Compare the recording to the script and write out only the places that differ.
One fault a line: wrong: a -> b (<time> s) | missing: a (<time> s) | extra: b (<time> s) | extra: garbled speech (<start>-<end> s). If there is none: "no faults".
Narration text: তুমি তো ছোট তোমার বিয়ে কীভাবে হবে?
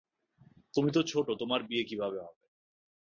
no faults